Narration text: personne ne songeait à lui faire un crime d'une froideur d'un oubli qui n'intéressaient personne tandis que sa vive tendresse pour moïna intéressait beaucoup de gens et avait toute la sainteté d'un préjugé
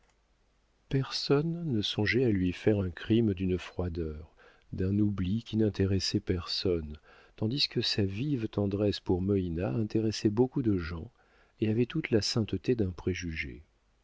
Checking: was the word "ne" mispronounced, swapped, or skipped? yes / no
no